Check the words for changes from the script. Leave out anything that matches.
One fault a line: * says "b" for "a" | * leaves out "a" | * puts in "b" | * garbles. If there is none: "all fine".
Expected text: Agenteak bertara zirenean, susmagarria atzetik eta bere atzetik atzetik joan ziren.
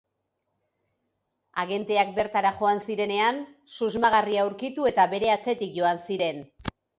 * puts in "joan"
* says "aurkitu" for "atzetik"
* leaves out "atzetik"